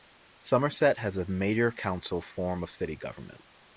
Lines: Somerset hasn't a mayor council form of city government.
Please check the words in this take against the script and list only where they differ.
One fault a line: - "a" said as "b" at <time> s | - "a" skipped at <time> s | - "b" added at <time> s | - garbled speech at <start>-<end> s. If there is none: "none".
- "hasn't" said as "has" at 1.0 s